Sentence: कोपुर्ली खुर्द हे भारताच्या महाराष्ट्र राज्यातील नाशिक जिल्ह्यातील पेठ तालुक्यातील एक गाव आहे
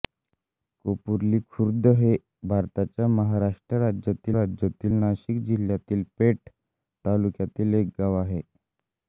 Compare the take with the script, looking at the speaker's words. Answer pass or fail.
fail